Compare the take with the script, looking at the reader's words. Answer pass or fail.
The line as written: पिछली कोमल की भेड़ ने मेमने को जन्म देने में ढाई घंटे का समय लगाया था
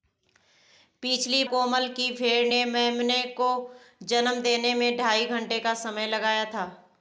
pass